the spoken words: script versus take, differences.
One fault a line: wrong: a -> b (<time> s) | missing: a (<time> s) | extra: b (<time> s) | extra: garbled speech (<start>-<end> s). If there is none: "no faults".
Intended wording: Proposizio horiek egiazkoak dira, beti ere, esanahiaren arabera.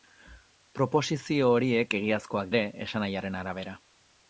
missing: dira beti (2.5 s)